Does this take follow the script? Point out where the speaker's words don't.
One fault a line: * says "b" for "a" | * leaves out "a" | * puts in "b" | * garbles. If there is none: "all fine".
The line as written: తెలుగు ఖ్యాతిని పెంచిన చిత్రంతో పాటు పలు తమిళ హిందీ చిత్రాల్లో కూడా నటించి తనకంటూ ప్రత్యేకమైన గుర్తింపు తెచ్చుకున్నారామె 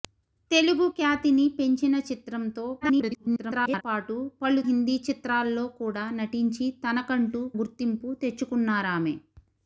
* garbles
* leaves out "తమిళ"
* leaves out "ప్రత్యేకమైన"